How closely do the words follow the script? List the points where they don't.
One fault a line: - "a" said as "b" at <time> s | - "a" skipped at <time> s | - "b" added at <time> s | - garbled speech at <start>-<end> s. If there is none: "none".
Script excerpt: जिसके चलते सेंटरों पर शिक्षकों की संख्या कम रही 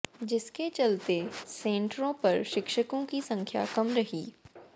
none